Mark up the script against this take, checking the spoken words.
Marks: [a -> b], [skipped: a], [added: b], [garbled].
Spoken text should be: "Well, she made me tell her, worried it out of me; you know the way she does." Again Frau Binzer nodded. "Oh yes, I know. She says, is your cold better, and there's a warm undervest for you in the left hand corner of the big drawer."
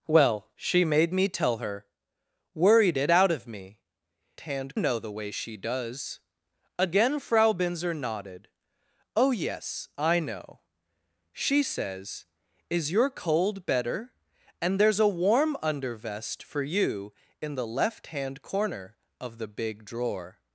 "Well, she made me tell her, worried it out of me; [you -> hand] know the way she does." Again Frau Binzer nodded. "Oh yes, I know. She says, is your cold better, and there's a warm undervest for you in the left hand corner of the big drawer."